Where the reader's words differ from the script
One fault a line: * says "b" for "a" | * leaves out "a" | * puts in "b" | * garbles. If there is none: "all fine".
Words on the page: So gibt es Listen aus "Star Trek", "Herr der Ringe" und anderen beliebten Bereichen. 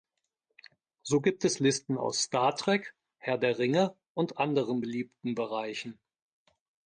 all fine